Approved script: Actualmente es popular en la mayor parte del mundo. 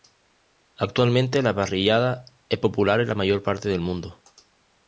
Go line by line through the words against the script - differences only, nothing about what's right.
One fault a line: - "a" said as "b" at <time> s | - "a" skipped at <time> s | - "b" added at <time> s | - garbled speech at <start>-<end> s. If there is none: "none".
- "la parrillada" added at 1.4 s